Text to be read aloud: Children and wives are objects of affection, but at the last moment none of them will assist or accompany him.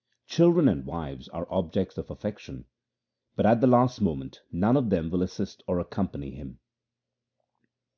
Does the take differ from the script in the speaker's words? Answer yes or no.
no